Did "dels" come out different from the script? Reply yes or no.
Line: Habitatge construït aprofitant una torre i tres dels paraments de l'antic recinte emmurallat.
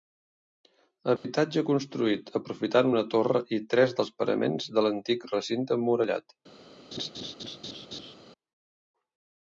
no